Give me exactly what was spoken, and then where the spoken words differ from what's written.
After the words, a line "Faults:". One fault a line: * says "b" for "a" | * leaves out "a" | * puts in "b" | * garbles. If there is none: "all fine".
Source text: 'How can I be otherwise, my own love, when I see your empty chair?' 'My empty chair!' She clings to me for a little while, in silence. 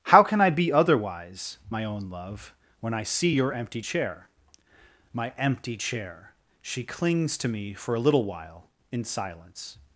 'How can I be otherwise, my own love, when I see your empty chair?' 'My empty chair!' She clings to me for a little while, in silence.
Faults:
all fine